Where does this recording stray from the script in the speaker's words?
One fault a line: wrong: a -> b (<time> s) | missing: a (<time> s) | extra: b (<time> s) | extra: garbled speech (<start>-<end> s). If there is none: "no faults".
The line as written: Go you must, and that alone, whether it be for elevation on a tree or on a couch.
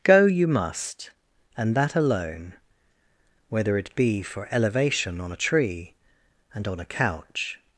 wrong: or -> and (6.5 s)